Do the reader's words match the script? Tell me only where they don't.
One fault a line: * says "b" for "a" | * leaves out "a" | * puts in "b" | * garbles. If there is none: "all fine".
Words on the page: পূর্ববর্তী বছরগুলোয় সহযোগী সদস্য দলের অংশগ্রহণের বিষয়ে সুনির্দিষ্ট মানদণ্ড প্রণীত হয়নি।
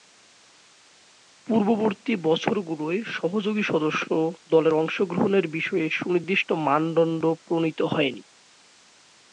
all fine